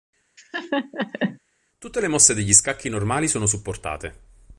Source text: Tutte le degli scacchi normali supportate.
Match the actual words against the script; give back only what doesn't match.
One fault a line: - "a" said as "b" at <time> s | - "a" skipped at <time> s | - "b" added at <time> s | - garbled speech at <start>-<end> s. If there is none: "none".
- "mosse" added at 2.1 s
- "sono" added at 3.3 s